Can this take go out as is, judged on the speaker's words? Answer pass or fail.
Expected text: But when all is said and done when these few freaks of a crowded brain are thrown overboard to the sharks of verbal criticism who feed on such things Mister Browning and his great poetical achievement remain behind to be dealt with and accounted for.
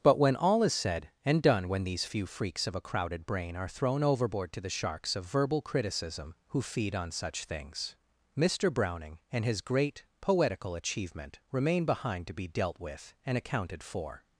pass